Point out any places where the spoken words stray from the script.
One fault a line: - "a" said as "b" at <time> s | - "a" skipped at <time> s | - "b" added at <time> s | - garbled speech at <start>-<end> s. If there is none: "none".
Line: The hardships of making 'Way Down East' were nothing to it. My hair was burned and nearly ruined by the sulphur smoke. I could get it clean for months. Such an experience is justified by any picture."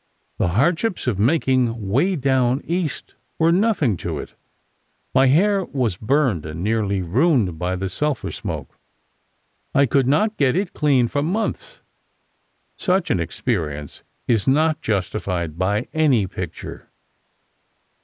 - "not" added at 10.1 s
- "not" added at 14.5 s